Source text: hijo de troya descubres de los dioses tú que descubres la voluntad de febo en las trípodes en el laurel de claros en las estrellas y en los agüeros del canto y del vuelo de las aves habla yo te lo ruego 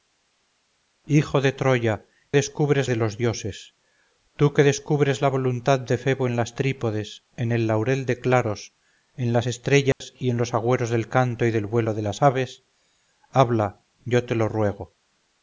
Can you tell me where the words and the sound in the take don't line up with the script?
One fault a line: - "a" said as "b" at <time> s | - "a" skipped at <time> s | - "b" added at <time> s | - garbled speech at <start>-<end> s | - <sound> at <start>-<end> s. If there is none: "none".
- dropout at 9.9-10.0 s